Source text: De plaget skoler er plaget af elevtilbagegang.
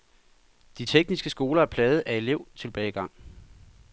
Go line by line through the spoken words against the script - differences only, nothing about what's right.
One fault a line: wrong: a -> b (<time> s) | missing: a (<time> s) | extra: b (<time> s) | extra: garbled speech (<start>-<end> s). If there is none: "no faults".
wrong: plaget -> tekniske (0.8 s)